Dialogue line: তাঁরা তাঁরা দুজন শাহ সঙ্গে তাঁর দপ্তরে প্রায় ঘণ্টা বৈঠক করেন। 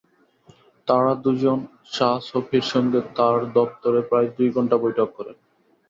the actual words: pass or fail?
fail